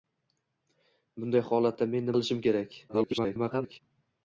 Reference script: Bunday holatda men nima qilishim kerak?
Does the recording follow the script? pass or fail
fail